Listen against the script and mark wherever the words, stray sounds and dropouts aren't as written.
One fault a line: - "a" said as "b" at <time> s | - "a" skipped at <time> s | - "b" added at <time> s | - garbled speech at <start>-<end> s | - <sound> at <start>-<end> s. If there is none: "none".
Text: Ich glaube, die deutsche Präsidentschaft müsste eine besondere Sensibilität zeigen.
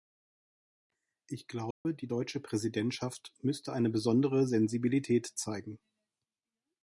- dropout at 1.7-1.9 s